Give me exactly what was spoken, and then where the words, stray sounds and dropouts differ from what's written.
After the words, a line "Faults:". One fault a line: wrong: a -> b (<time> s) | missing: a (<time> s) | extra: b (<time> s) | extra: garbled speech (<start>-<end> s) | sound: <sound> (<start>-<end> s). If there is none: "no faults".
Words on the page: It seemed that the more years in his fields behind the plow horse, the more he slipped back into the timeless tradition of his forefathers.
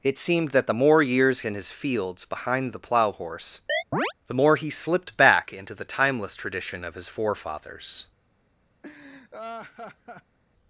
It seemed that the more years in his fields behind the plow horse, the more he slipped back into the timeless tradition of his forefathers.
Faults:
sound: chirp (3.7-4.1 s)
sound: laugh (8.8-10.4 s)